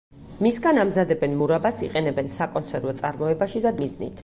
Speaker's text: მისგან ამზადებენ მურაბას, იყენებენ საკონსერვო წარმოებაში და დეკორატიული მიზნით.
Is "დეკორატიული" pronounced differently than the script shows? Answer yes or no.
yes